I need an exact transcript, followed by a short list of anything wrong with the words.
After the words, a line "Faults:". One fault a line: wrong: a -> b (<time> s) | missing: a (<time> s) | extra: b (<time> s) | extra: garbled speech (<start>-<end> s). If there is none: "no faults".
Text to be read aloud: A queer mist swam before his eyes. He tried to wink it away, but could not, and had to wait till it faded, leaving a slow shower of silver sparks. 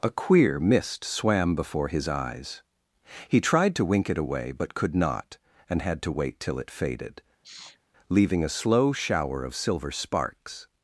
A queer mist swam before his eyes. He tried to wink it away, but could not, and had to wait till it faded, leaving a slow shower of silver sparks.
Faults:
no faults